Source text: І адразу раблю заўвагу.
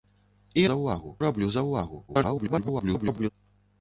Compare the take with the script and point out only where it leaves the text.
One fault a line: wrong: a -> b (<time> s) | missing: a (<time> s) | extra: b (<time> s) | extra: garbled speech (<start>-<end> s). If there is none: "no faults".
wrong: адразу -> заўвагу (0.7 s)
extra: garbled speech (2.1-3.3 s)